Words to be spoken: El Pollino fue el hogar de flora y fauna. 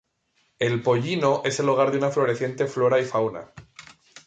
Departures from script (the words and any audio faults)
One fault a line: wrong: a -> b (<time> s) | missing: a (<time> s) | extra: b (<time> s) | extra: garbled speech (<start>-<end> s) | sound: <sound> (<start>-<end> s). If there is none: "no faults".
wrong: fue -> es (1.4 s)
extra: una floreciente (2.0 s)